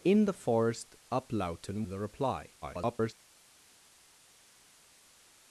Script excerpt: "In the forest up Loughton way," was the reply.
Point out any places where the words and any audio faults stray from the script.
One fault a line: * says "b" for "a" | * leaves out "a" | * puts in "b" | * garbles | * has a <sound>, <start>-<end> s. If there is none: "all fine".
* leaves out "way was"
* garbles